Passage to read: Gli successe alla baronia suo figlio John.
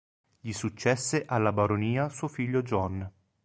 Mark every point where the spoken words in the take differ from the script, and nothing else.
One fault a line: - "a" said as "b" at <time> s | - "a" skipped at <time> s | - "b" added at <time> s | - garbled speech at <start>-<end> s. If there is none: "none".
none